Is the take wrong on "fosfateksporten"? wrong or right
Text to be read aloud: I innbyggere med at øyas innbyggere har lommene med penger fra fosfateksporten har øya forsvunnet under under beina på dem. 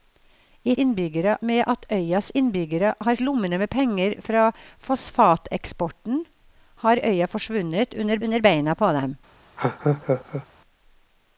right